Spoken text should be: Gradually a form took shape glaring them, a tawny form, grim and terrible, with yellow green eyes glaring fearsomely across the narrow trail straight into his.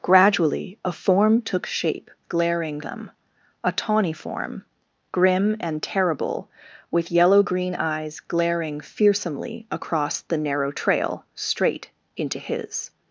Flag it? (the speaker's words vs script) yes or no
no